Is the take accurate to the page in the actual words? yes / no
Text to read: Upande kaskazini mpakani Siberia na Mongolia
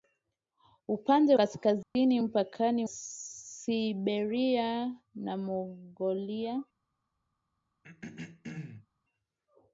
yes